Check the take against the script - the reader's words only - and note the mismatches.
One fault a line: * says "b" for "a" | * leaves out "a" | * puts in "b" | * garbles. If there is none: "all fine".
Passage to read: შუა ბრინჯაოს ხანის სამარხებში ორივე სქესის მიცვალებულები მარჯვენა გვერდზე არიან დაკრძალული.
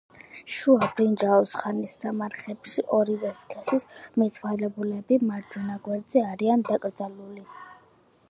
all fine